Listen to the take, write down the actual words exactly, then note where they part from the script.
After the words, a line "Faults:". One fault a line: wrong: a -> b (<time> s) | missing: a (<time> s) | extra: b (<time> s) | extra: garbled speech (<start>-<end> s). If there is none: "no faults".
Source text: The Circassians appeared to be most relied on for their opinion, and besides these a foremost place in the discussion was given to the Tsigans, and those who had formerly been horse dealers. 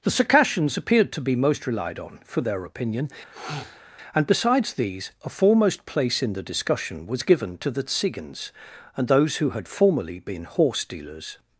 The Circassians appeared to be most relied on for their opinion, and besides these a foremost place in the discussion was given to the Tsigans, and those who had formerly been horse dealers.
Faults:
no faults